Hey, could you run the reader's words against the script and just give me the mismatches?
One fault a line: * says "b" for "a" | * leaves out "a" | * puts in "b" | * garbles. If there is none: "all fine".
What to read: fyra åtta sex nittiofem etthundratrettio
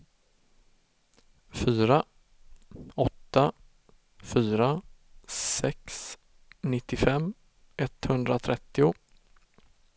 * puts in "fyra"